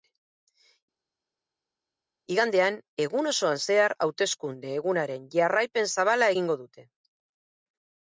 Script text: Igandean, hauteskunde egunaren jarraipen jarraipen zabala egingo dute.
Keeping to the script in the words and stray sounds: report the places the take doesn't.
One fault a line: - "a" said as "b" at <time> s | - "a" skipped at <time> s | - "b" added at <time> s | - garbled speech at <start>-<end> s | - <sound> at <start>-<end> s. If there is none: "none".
- "egun osoan zehar" added at 3.0 s
- "jarraipen" skipped at 5.9 s